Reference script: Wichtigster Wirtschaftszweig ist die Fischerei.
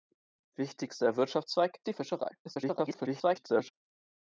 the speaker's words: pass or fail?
fail